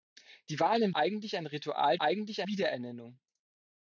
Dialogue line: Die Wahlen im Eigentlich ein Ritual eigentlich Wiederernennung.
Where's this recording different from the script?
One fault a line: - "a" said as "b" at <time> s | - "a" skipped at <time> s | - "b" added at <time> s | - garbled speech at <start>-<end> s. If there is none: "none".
none